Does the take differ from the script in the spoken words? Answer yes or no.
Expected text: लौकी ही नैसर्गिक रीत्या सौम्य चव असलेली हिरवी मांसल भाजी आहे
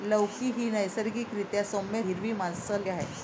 yes